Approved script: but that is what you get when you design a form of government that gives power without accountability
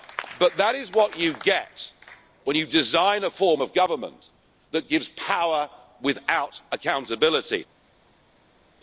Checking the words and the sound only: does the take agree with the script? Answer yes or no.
yes